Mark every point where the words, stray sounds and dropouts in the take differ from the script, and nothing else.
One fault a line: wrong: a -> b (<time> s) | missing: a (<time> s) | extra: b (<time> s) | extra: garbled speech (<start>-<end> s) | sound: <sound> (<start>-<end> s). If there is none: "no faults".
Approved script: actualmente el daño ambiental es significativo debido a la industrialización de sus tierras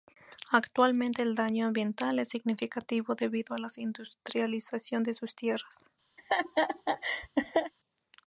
sound: laugh (6.2-7.7 s)